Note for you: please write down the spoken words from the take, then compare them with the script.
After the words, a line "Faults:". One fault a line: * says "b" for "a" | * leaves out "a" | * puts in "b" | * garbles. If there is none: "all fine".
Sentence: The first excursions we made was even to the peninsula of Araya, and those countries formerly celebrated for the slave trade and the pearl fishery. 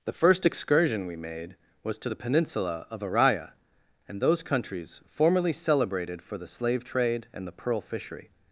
The first excursion we made was to the peninsula of Araya, and those countries formerly celebrated for the slave trade and the pearl fishery.
Faults:
* says "excursion" for "excursions"
* leaves out "even"